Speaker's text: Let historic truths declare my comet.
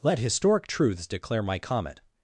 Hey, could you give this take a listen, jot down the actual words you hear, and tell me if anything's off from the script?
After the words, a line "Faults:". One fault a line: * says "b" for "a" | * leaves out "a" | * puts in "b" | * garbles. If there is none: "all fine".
Let historic truths declare my comet.
Faults:
all fine